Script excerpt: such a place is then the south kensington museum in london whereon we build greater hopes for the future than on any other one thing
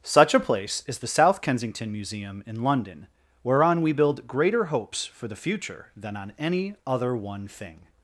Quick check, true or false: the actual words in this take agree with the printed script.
false